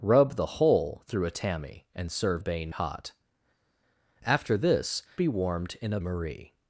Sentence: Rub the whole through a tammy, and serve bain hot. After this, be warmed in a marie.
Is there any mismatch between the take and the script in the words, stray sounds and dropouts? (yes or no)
no